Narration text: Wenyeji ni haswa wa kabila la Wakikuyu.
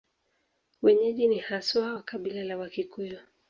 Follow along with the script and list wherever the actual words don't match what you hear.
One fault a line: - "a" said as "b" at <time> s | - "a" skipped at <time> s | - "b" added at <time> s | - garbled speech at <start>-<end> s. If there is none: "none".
none